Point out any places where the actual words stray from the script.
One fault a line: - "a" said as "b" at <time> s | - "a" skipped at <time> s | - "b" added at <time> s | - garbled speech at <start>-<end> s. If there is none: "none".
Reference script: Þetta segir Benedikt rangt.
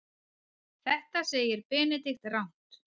none